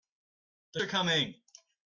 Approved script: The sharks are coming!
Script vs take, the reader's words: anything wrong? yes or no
yes